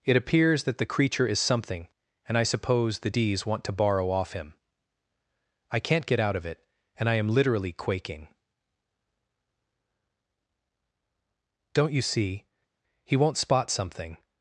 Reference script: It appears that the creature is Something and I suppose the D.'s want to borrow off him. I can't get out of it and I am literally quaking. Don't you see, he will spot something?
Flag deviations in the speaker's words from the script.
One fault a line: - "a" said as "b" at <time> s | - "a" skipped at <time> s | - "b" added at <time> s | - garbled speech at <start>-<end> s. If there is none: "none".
- "will" said as "won't" at 13.2 s